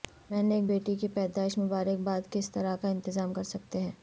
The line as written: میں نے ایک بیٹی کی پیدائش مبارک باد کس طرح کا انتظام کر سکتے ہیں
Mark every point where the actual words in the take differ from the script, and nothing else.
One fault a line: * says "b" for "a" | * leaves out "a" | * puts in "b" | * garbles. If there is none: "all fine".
all fine